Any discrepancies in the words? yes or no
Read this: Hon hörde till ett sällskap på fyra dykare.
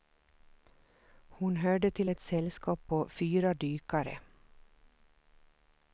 no